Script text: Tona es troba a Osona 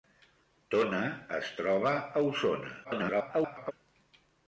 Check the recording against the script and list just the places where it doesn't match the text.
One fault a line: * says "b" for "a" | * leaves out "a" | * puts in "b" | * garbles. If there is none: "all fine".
* garbles